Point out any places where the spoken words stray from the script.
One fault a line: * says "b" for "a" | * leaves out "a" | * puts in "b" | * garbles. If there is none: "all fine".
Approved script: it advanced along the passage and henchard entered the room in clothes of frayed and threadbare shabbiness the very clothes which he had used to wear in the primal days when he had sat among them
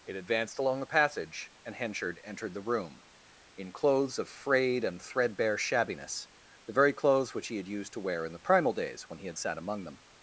all fine